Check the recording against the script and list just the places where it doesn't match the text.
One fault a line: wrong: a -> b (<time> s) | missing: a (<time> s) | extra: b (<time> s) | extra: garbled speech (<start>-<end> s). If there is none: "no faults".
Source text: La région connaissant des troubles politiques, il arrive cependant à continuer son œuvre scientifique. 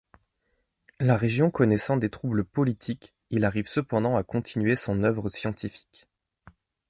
no faults